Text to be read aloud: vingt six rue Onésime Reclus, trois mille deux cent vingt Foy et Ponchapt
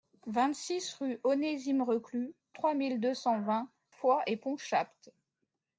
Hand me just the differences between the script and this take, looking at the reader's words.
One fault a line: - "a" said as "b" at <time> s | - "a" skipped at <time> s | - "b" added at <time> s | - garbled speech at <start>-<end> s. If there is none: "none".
none